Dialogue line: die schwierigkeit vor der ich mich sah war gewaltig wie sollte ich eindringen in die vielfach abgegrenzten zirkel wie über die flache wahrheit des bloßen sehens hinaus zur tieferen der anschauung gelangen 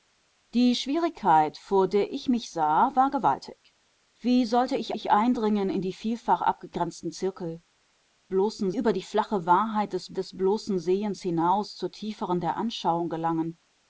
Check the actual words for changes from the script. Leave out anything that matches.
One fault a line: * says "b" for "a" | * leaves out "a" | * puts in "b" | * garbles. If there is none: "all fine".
* puts in "ich"
* says "bloßen" for "wie"
* puts in "des"